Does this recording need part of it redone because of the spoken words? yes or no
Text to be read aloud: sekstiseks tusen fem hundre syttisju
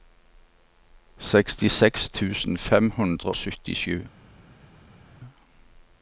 no